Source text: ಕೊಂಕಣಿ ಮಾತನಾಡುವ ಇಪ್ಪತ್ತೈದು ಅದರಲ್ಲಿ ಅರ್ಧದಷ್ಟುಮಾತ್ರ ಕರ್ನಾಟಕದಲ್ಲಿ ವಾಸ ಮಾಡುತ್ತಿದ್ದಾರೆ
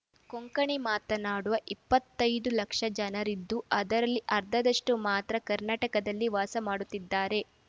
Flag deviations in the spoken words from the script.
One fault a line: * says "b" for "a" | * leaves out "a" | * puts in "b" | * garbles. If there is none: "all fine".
* puts in "ಲಕ್ಷ ಜನರಿದ್ದು"